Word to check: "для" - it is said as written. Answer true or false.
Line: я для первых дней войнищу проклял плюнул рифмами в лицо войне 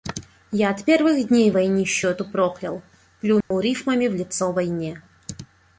false